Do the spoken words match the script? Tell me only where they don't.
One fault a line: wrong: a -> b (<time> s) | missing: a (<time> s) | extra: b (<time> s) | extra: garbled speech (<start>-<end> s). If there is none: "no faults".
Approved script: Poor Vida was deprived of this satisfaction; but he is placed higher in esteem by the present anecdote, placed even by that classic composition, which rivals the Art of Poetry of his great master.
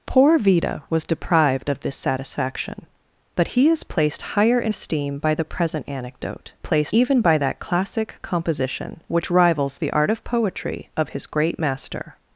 no faults